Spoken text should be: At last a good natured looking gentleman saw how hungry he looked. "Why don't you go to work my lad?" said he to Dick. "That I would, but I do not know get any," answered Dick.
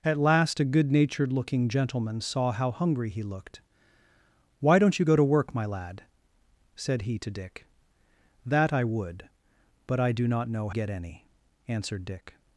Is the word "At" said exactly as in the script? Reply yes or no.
yes